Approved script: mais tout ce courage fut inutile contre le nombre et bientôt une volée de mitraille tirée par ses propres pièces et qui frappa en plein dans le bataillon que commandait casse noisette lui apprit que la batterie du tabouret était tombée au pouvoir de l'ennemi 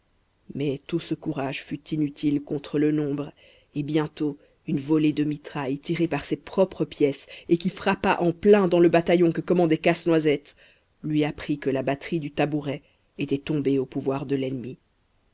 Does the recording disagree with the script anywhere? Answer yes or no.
no